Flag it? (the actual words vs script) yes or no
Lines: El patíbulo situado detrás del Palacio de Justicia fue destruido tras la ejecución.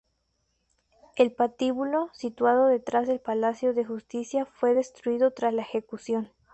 no